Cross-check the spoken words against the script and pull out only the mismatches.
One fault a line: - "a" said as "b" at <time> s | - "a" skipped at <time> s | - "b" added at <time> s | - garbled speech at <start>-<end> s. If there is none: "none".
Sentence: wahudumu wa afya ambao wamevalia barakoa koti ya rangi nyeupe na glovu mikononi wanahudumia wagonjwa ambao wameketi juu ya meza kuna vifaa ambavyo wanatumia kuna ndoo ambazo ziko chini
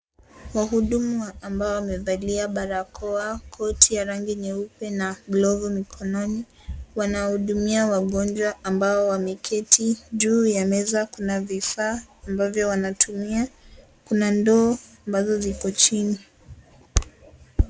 - "afya" skipped at 1.4 s